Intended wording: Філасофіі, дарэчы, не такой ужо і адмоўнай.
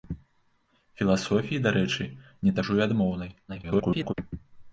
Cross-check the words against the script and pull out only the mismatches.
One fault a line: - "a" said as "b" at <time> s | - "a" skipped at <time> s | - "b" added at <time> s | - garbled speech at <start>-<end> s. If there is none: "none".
- "такой" skipped at 2.6 s
- garbled speech at 3.5-4.1 s